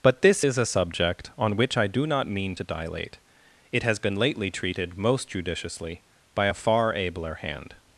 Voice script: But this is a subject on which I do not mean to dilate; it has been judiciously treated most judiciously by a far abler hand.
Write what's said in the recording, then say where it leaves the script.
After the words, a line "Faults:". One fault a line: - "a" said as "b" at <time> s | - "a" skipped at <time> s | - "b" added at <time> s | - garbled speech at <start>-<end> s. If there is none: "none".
But this is a subject on which I do not mean to dilate; it has been lately treated most judiciously by a far abler hand.
Faults:
- "judiciously" said as "lately" at 4.1 s